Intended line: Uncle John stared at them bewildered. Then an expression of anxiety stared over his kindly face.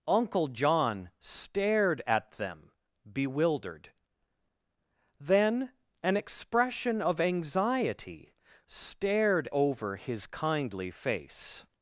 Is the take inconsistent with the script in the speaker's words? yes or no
no